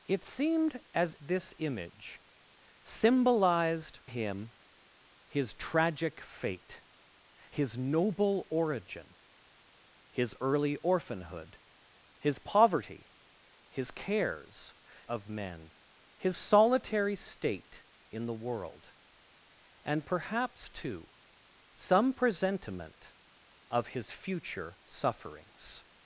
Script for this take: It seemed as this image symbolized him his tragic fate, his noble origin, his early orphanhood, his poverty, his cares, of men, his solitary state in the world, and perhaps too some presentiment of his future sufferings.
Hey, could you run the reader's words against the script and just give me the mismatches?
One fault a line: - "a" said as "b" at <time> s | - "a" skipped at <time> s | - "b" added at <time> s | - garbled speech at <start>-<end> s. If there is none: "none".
none